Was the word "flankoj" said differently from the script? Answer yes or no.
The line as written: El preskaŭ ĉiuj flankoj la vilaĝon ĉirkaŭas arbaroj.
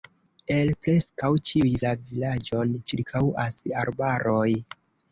yes